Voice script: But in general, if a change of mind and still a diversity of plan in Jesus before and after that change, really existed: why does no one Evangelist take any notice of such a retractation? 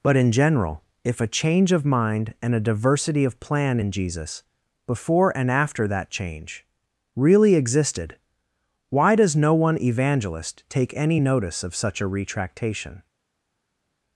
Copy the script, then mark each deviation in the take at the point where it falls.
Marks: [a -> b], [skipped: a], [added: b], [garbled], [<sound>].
But in general, if a change of mind and [skipped: still] a diversity of plan in Jesus before and after that change, really existed: why does no one Evangelist take any notice of such a retractation?